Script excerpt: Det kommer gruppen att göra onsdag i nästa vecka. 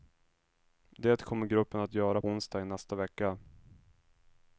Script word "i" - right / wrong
right